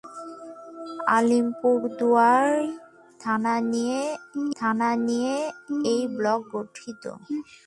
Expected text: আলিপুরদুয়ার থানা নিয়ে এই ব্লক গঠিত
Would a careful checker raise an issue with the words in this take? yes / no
yes